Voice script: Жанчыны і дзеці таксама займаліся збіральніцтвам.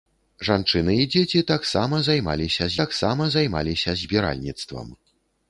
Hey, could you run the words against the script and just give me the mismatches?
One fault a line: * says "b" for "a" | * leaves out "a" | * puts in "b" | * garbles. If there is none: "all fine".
* puts in "таксама займаліся"